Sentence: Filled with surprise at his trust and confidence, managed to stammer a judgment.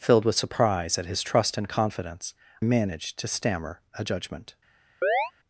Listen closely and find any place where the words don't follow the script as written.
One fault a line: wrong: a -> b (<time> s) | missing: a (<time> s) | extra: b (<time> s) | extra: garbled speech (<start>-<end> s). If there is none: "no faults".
no faults